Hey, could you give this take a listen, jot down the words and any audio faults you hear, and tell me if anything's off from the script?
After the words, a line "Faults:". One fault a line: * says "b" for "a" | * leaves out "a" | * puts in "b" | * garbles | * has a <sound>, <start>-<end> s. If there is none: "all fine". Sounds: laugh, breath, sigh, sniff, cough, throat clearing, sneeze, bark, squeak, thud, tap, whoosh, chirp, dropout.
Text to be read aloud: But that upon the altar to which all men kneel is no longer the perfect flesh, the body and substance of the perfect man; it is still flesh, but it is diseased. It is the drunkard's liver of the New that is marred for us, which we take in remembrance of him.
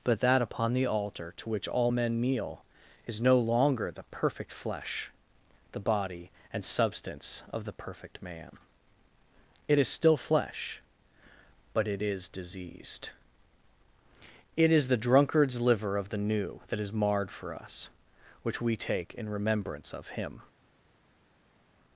But that upon the altar to which all men kneel is no longer the perfect flesh, the body and substance of the perfect man; it is still flesh, but it is diseased. It is the drunkard's liver of the New that is marred for us, which we take in remembrance of him.
Faults:
all fine